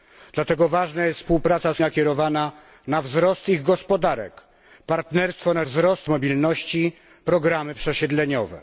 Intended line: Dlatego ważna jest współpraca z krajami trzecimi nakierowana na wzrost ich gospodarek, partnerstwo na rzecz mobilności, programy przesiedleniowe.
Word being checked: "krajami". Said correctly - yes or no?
no